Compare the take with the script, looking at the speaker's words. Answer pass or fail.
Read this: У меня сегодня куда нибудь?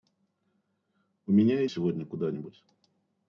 pass